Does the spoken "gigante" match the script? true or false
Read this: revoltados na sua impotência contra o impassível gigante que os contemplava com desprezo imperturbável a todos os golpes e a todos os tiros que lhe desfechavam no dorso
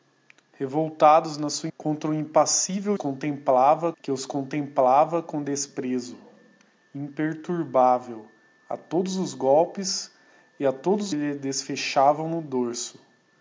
false